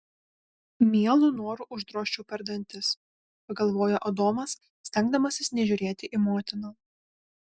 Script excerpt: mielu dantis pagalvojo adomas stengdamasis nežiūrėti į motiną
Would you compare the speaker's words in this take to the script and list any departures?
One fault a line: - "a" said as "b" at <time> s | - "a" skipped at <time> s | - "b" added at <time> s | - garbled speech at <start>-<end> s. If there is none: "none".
- "noru uždrožčiau per" added at 1.4 s